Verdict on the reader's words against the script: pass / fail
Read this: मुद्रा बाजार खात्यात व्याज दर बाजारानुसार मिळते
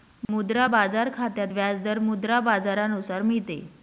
fail